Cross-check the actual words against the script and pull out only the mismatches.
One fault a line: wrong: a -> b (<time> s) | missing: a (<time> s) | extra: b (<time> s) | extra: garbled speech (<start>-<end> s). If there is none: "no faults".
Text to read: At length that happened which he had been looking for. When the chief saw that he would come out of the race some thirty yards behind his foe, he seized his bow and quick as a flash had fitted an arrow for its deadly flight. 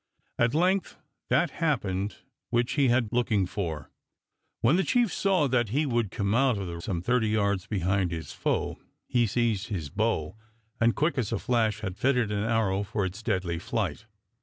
missing: been (3.1 s)
missing: race (6.8 s)